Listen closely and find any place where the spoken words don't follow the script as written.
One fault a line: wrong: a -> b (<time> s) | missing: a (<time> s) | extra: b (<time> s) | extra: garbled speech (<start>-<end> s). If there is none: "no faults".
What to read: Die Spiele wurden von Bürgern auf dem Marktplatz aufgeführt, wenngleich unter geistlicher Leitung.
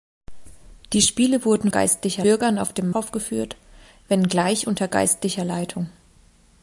wrong: von -> geistlicher (1.7 s)
missing: Marktplatz (2.9 s)